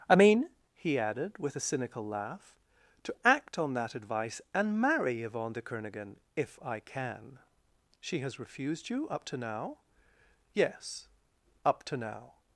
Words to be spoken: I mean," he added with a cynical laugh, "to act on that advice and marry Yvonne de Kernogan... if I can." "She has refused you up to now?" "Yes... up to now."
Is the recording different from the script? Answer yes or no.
no